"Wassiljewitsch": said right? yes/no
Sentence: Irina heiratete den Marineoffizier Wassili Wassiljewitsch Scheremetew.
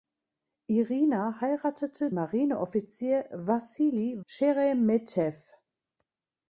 no